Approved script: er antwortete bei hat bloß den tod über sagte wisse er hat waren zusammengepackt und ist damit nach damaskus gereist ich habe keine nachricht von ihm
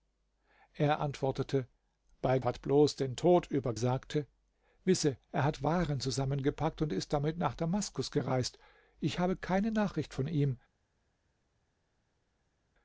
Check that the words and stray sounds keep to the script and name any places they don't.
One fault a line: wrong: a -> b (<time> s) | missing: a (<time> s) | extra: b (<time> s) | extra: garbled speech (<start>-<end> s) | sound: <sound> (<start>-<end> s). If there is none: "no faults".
no faults